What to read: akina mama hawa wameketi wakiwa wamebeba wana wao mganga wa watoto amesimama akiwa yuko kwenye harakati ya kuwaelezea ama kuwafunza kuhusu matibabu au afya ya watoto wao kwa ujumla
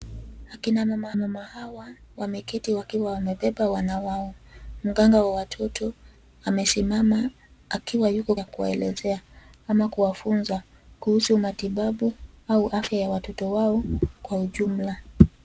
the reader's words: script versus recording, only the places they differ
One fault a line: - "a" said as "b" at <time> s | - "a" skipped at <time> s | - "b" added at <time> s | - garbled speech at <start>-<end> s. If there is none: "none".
- "mama" added at 1.2 s
- "kwenye harakati" skipped at 8.3 s